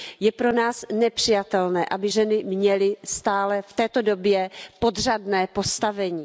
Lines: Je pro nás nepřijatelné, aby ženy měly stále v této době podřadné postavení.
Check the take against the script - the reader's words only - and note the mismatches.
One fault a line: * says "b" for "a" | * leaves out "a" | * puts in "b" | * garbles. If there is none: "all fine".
all fine